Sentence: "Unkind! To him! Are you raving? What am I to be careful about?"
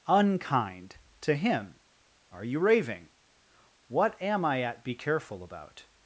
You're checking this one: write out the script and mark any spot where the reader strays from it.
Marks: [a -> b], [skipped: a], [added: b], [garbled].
"Unkind! To him! Are you raving? What am I [to -> at] be careful about?"